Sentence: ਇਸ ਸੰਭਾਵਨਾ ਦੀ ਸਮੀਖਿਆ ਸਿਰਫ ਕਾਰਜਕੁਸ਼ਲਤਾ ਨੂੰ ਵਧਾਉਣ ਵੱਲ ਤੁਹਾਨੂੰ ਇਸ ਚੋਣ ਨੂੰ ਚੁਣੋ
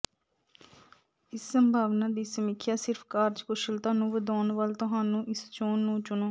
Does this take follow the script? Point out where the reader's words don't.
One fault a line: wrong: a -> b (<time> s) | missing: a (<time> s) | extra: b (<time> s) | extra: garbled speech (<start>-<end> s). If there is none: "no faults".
no faults